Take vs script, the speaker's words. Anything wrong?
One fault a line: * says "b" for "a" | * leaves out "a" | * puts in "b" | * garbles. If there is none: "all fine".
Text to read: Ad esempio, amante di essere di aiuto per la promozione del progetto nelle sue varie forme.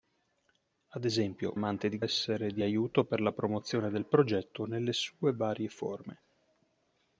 all fine